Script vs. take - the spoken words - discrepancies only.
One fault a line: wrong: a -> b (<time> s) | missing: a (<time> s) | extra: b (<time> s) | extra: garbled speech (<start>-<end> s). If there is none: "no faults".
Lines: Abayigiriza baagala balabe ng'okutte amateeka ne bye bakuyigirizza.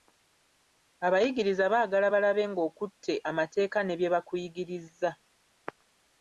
no faults